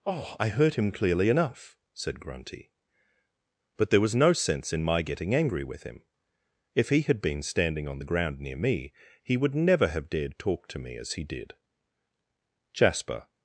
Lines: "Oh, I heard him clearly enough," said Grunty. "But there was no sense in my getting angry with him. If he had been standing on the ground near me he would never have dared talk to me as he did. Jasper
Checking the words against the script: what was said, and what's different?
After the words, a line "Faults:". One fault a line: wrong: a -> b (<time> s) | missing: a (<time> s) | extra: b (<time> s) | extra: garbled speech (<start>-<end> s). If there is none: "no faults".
"Oh, I heard him clearly enough," said Grunty. "But there was no sense in my getting angry with him. If he had been standing on the ground near me he would never have dared talk to me as he did. Jasper
Faults:
no faults